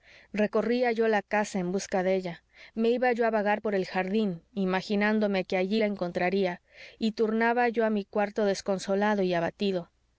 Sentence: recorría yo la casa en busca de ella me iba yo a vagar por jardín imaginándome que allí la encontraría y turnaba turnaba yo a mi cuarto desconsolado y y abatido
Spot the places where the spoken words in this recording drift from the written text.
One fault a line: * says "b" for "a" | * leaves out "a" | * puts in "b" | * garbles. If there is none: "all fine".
* puts in "el"
* leaves out "turnaba"
* leaves out "y"